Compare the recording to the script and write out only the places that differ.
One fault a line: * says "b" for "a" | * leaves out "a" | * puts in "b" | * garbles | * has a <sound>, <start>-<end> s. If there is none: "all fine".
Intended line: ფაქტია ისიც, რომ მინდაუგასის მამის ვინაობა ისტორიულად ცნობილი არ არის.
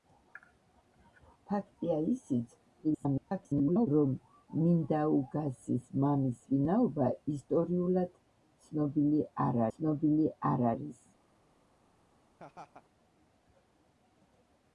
* garbles
* puts in "ცნობილი არ"
* has a laugh, 12.4-12.9 s